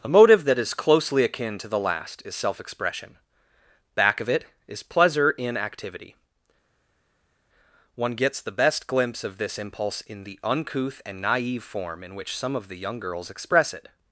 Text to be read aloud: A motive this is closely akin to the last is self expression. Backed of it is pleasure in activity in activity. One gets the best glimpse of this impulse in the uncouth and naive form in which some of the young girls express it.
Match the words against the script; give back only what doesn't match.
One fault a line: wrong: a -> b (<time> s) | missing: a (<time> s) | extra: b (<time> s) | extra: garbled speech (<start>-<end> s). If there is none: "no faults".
wrong: this -> that (0.5 s)
wrong: Backed -> Back (3.9 s)
missing: in activity (6.2 s)